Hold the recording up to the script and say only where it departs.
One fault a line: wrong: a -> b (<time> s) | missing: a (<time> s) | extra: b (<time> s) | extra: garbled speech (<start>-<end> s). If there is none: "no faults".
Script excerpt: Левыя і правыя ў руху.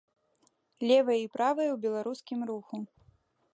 extra: беларускім (1.8 s)